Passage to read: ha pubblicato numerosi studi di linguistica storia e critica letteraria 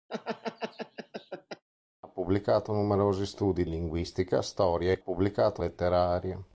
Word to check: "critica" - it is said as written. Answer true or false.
false